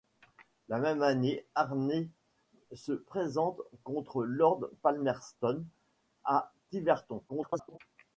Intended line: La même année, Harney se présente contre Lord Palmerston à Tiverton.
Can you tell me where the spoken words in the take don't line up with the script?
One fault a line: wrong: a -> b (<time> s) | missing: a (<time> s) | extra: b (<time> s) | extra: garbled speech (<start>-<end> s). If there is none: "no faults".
extra: garbled speech (7.3-7.8 s)